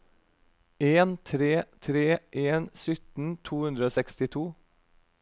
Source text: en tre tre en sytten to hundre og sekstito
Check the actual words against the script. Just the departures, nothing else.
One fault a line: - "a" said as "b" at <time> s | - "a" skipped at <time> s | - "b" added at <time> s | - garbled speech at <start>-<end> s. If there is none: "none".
none